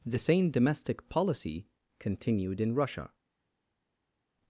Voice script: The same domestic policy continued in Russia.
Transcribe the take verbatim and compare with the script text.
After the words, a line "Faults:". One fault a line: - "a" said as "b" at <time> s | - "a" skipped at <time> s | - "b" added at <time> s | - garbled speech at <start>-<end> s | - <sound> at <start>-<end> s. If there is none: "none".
The same domestic policy continued in Russia.
Faults:
none